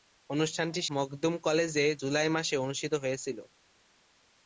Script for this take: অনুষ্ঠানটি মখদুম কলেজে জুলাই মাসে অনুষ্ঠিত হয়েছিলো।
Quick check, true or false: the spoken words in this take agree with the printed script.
true